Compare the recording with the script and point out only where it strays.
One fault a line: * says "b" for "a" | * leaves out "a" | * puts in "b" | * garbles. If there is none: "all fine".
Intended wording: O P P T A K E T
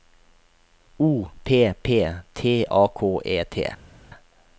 all fine